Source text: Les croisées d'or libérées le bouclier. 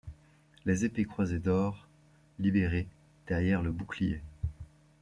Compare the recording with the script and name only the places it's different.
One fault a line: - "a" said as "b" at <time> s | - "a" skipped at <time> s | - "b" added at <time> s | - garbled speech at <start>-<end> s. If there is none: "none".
- "épées" added at 0.8 s
- "derrière" added at 3.3 s